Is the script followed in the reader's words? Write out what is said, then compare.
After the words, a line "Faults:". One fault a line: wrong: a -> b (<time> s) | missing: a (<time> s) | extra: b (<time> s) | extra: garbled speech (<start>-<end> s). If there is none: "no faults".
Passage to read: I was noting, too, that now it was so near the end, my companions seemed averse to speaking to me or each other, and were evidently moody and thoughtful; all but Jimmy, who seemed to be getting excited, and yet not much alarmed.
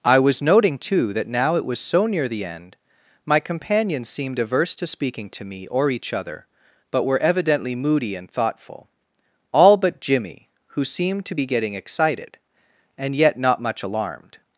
I was noting, too, that now it was so near the end, my companions seemed averse to speaking to me or each other, but were evidently moody and thoughtful; all but Jimmy, who seemed to be getting excited, and yet not much alarmed.
Faults:
wrong: and -> but (6.9 s)